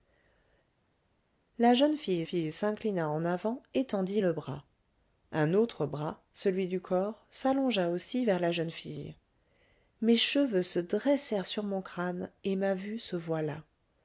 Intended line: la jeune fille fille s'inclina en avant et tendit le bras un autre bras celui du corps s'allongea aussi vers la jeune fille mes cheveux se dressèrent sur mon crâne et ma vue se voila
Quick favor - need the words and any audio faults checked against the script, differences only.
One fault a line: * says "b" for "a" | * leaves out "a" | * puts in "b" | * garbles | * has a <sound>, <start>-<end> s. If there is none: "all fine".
all fine